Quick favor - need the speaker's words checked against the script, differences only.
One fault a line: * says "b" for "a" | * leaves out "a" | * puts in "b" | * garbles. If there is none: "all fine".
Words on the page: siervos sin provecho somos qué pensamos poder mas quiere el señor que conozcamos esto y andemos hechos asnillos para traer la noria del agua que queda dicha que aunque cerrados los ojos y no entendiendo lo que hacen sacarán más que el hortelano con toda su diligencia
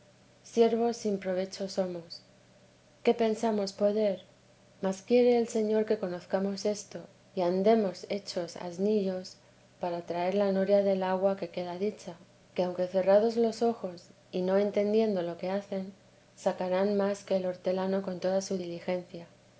all fine